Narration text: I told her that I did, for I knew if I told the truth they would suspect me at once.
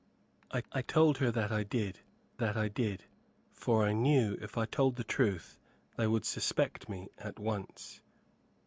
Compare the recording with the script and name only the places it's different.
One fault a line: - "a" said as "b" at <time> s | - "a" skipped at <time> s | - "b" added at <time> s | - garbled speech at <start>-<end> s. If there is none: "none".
- "I" added at 0.7 s
- "that I did" added at 2.4 s